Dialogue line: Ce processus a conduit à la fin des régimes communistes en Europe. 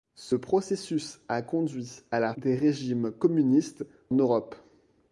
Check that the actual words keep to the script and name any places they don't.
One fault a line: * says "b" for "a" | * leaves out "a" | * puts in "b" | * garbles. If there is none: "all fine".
* leaves out "fin"
* leaves out "en"